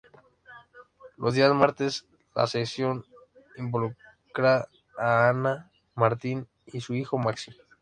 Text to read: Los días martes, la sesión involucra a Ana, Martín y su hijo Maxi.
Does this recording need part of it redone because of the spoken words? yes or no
no